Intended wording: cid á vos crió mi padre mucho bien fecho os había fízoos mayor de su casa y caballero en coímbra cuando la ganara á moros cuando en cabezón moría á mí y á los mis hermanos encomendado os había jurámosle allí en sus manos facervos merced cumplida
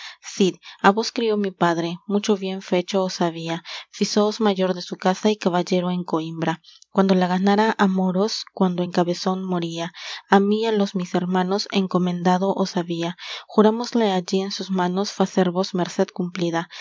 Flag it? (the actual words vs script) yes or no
no